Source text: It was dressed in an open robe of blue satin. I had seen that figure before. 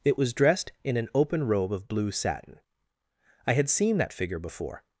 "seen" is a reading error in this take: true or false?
false